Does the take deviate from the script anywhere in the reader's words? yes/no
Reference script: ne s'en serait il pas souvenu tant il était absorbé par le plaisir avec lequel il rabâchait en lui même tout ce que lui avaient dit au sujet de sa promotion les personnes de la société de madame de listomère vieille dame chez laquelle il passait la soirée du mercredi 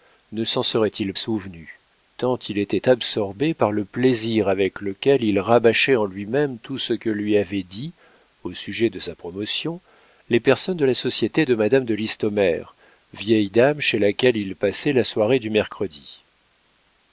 yes